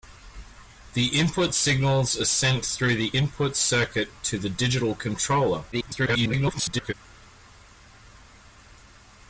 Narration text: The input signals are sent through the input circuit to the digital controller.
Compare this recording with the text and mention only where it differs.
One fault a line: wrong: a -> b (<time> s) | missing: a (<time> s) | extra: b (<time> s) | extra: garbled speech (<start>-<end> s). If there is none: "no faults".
extra: garbled speech (5.7-6.9 s)